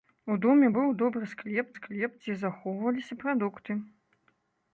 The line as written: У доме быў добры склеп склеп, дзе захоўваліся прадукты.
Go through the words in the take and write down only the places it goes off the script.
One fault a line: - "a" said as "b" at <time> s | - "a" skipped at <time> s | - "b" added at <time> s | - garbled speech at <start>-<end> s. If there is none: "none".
none